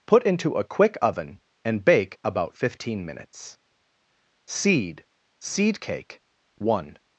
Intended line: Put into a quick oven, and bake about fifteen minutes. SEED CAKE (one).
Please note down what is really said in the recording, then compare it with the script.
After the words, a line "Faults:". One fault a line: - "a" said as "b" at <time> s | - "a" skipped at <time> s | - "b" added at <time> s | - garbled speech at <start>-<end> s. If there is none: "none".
Put into a quick oven, and bake about fifteen minutes. SEED SEED CAKE (one).
Faults:
- "SEED" added at 5.4 s